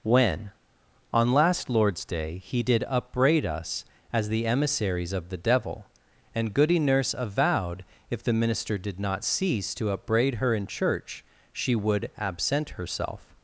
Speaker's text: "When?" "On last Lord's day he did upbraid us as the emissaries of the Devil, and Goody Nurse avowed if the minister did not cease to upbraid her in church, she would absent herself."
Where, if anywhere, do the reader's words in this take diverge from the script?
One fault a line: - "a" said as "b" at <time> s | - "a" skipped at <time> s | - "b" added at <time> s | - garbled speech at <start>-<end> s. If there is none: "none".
none